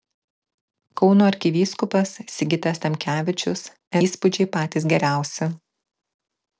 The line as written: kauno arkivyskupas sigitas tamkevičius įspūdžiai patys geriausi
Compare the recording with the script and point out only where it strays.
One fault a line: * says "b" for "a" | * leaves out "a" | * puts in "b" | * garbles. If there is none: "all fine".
all fine